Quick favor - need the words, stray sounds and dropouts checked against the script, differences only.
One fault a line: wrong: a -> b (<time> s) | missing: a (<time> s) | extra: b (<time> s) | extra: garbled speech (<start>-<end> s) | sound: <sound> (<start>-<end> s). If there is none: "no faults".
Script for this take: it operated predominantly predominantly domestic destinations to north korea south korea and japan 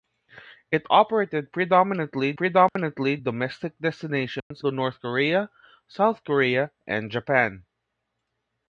sound: dropout (2.7-2.8 s)
sound: dropout (4.4-4.5 s)